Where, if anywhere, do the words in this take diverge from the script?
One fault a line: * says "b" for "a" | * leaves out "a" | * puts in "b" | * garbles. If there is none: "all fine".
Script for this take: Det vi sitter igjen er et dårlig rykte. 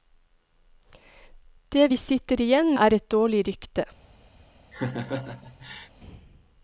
all fine